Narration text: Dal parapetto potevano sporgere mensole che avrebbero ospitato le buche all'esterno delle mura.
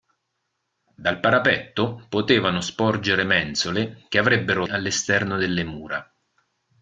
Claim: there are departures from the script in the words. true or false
true